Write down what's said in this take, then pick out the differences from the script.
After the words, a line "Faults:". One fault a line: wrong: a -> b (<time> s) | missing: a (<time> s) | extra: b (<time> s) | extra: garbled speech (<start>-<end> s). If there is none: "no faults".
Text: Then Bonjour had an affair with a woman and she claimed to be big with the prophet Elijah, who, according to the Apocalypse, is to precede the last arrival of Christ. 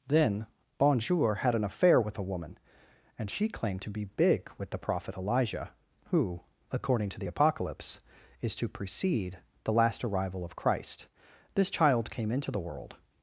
Then Bonjour had an affair with a woman and she claimed to be big with the prophet Elijah, who, according to the Apocalypse, is to precede the last arrival of Christ. This child came into the world
Faults:
extra: This child came into the world (11.6 s)